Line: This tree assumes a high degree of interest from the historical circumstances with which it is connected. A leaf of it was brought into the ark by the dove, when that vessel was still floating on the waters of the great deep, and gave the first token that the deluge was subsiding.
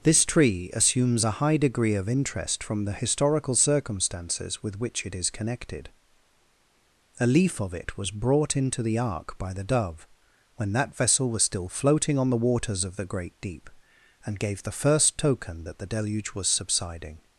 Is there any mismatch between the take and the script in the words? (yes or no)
no